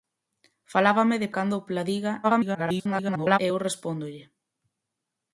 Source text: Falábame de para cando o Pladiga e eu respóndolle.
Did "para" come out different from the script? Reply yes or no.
yes